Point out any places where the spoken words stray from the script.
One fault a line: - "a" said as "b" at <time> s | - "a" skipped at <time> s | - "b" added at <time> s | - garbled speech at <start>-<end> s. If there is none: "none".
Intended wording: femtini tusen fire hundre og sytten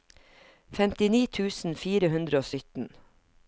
none